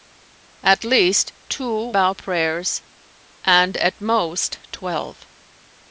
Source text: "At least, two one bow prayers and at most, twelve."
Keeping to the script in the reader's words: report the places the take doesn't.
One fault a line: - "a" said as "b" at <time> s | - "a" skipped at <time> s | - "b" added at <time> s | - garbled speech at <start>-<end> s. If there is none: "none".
- "one" skipped at 1.9 s